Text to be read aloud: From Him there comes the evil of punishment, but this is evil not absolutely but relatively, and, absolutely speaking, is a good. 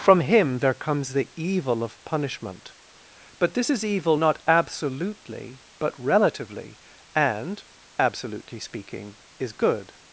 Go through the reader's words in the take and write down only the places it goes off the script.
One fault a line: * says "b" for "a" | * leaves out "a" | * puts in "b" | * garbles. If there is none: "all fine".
* leaves out "a"